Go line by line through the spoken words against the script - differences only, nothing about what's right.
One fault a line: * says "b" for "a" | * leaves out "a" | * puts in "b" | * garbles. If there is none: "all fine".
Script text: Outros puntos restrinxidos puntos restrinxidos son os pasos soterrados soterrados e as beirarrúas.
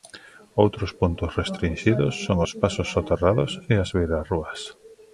* leaves out "puntos restrinxidos"
* leaves out "soterrados"